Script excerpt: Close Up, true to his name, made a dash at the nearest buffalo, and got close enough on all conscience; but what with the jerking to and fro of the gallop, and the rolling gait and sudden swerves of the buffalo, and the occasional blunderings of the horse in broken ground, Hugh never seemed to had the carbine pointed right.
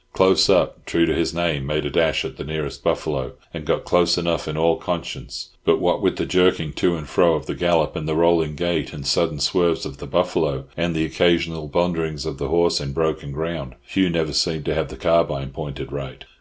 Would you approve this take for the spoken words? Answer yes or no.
no